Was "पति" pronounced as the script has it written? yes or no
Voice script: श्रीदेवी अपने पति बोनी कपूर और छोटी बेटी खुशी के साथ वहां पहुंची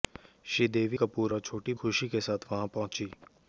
no